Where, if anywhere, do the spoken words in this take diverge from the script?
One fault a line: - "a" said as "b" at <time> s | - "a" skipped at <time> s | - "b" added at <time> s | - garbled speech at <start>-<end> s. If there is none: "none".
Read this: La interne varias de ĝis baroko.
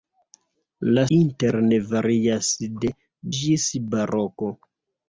none